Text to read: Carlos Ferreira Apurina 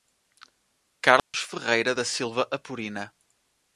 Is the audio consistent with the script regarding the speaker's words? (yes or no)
no